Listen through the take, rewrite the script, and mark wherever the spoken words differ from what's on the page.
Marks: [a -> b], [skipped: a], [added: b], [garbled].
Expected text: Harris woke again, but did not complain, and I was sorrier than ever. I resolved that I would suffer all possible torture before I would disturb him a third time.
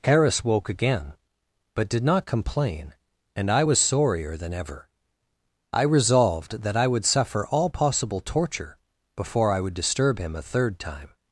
Harris woke again, but did not complain, and I was sorrier than ever. I resolved that I would suffer all possible torture before I would disturb him a third time.